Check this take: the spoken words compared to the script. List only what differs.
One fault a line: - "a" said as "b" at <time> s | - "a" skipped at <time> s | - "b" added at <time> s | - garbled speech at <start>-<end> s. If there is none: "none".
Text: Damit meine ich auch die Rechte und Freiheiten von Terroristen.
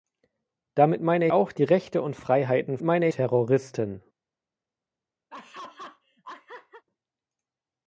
- "ich" skipped at 1.3 s
- "von" said as "meine" at 2.8 s